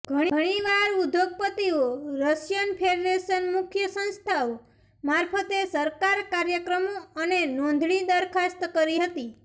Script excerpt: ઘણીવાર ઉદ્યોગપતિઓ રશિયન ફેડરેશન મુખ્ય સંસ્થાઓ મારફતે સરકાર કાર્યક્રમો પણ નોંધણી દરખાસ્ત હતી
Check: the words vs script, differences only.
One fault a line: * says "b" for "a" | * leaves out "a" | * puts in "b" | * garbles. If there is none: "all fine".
* says "અને" for "પણ"
* puts in "કરી"